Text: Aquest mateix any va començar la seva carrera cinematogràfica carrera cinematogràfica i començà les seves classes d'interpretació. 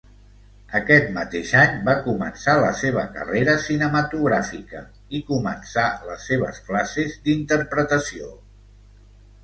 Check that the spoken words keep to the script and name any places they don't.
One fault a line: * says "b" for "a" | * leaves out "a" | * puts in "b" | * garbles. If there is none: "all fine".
* leaves out "carrera cinematogràfica"